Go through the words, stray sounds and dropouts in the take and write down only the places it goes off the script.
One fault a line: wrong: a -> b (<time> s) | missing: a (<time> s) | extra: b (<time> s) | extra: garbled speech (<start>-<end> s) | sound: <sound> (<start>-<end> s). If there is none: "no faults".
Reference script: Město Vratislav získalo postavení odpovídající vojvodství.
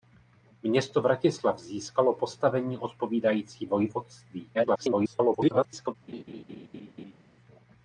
extra: garbled speech (4.5-6.0 s)
sound: laugh (6.1-7.2 s)